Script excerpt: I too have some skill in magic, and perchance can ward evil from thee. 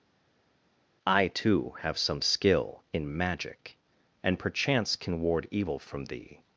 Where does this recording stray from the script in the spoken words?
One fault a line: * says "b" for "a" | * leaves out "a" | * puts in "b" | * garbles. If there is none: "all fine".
all fine